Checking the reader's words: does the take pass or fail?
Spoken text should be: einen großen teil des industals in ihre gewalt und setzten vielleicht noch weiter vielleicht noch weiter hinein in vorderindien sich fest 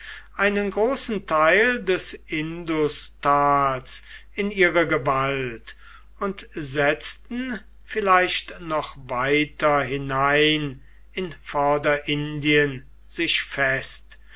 fail